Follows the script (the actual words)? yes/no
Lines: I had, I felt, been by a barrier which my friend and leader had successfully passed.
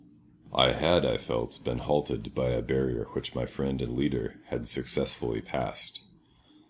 no